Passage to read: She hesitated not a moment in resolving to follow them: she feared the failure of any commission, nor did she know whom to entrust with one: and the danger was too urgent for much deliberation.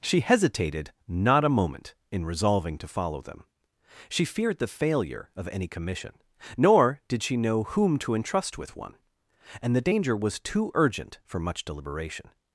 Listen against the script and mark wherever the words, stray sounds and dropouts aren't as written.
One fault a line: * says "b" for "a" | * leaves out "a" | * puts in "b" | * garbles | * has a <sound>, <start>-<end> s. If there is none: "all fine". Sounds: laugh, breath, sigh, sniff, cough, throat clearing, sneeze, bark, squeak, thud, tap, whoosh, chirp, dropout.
all fine